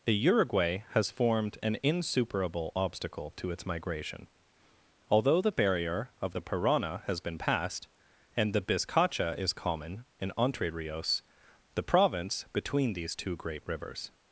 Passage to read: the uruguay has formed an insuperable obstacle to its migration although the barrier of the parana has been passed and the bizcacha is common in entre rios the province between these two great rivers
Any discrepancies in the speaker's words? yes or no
no